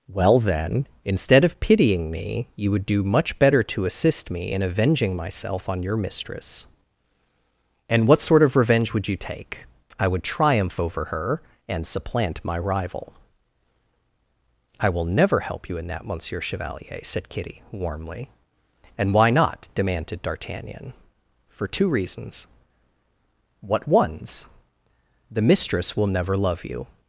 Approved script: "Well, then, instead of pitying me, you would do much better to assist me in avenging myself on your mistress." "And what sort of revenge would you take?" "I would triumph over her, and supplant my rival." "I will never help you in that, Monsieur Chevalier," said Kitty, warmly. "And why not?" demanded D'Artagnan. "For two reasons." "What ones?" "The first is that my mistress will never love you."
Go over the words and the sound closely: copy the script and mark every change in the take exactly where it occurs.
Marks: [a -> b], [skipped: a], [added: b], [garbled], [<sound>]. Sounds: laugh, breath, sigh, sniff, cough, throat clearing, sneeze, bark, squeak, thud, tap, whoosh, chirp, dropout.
"Well, then, instead of pitying me, you would do much better to assist me in avenging myself on your mistress." "And what sort of revenge would you take?" "I would triumph over her, and supplant my rival." "I will never help you in that, Monsieur Chevalier," said Kitty, warmly. "And why not?" demanded D'Artagnan. "For two reasons." "What ones?" "The [skipped: first is that my] mistress will never love you."